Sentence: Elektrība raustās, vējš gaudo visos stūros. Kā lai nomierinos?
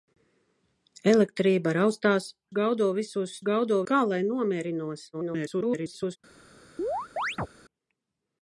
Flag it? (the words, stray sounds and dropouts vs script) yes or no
yes